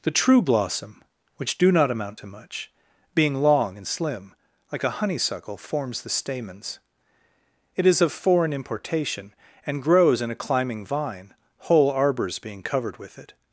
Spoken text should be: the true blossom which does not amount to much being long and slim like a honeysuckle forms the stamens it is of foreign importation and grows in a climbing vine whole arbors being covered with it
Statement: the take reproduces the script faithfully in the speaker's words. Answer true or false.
false